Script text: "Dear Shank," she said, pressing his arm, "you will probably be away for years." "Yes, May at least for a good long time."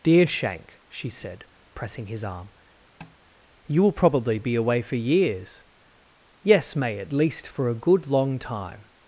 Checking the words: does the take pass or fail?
pass